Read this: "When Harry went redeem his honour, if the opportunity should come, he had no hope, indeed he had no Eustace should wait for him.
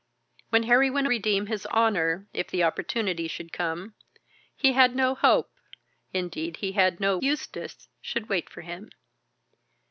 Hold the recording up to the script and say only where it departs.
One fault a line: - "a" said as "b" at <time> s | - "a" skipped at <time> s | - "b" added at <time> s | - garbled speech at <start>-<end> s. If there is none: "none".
none